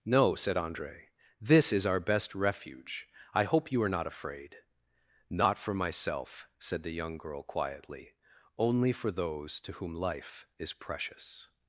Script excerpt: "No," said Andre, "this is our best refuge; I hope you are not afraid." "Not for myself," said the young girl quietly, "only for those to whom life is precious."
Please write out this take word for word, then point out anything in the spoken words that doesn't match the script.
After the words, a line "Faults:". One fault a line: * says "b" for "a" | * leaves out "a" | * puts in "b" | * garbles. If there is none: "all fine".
"No," said Andre, "this is our best refuge; I hope you are not afraid." "Not for myself," said the young girl quietly, "only for those to whom life is precious."
Faults:
all fine